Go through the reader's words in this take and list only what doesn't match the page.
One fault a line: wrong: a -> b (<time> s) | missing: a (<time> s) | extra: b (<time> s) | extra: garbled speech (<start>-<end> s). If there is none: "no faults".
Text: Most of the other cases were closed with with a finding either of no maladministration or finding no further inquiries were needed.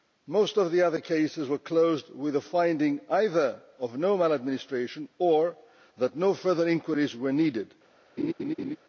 missing: with (2.4 s)
wrong: finding -> that (6.0 s)